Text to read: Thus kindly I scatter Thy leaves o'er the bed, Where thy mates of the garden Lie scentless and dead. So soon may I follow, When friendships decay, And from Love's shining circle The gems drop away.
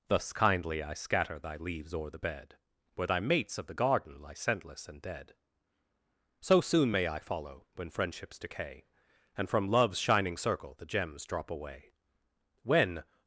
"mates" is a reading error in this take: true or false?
false